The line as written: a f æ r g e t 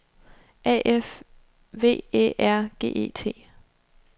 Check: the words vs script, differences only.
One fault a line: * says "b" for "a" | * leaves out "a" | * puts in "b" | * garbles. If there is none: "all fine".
* puts in "v"